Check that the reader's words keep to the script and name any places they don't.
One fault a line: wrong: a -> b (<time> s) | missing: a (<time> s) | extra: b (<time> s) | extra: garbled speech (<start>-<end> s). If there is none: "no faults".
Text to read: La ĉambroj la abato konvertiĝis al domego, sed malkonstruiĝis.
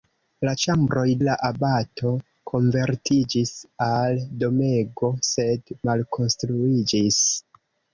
no faults